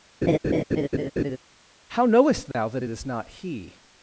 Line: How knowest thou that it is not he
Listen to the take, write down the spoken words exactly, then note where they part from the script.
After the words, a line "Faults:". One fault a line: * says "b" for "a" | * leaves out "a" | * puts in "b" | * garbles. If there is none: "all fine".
How knowest thou that it is not he
Faults:
all fine